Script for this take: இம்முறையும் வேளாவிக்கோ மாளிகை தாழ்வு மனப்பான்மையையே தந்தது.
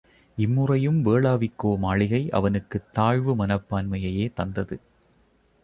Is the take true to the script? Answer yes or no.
no